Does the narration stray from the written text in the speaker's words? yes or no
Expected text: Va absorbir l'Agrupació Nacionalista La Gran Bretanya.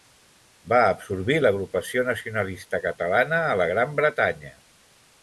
yes